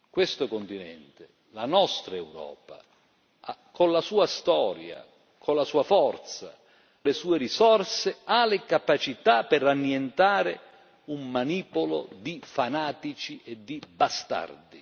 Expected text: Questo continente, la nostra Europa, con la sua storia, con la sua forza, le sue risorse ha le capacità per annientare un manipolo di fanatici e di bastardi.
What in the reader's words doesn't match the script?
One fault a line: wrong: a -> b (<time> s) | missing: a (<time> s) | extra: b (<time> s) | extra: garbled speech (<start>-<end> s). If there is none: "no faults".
no faults